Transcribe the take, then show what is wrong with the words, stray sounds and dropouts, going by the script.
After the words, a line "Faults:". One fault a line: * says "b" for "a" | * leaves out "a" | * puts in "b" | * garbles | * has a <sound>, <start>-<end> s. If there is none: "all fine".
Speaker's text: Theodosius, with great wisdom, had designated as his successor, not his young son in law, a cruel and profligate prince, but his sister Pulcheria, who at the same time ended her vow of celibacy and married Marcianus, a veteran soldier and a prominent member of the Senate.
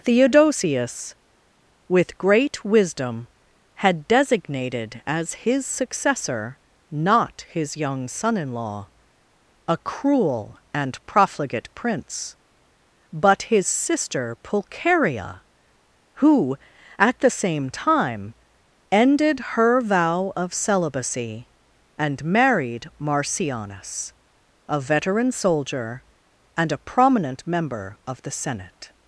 Theodosius, with great wisdom, had designated as his successor, not his young son in law, a cruel and profligate prince, but his sister Pulcheria, who at the same time ended her vow of celibacy and married Marcianus, a veteran soldier and a prominent member of the Senate.
Faults:
all fine